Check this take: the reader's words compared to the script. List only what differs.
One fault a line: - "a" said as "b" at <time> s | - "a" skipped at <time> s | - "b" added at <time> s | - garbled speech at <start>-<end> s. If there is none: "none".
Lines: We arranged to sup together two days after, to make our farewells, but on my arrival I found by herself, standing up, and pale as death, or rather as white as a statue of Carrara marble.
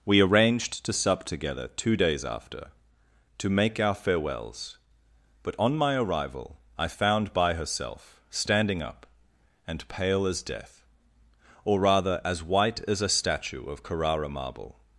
none